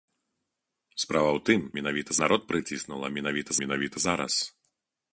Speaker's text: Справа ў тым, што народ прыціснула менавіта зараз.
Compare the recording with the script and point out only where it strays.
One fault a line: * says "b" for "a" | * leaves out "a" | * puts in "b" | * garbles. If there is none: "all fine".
* says "менавіта" for "што"
* puts in "менавіта"